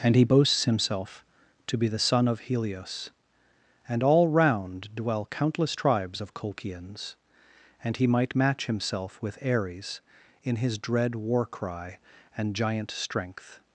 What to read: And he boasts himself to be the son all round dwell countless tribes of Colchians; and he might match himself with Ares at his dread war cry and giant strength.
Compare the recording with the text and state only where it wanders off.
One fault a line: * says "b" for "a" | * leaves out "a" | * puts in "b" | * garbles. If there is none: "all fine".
* puts in "of Helios and"
* says "in" for "at"